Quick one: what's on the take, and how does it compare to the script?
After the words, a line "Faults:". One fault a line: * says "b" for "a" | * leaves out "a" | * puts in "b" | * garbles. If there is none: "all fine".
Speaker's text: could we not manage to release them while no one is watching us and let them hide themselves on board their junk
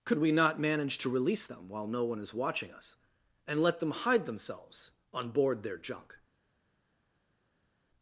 could we not manage to release them while no one is watching us and let them hide themselves on board their junk
Faults:
all fine